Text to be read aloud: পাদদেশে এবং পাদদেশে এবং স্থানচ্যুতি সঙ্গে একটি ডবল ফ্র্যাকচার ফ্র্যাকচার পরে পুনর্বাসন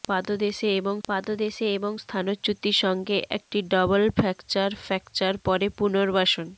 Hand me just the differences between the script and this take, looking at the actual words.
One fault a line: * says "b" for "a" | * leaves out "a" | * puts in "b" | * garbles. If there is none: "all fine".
all fine